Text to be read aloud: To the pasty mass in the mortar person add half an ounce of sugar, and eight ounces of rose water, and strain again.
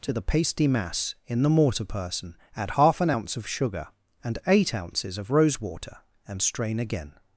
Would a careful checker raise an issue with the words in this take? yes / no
no